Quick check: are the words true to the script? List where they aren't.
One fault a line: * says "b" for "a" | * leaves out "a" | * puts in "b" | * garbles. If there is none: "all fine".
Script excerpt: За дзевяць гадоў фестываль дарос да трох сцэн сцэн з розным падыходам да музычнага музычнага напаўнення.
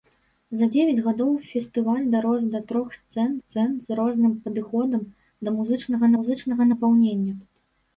all fine